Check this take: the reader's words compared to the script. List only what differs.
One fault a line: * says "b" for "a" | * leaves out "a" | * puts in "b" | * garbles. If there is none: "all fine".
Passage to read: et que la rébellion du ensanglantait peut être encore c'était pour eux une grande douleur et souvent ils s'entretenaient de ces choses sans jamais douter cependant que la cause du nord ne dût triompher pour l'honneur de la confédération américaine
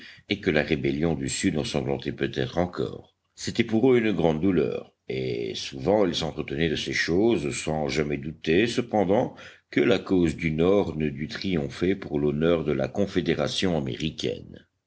* puts in "sud"